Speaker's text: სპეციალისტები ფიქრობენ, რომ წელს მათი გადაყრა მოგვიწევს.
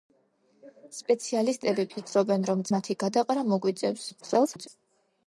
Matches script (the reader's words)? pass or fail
fail